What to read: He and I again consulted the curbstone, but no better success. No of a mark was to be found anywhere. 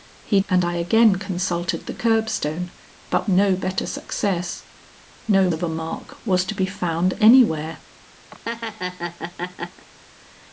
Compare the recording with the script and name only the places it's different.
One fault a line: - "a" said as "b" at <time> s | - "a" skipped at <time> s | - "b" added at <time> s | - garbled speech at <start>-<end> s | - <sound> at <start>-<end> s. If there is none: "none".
- laugh at 8.3-9.9 s